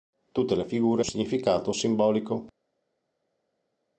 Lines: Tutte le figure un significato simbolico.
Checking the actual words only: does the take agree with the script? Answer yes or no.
yes